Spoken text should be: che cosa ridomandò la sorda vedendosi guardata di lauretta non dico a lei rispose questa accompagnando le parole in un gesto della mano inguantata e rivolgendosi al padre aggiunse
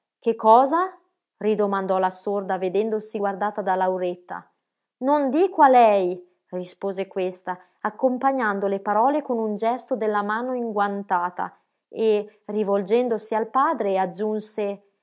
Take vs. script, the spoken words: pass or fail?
fail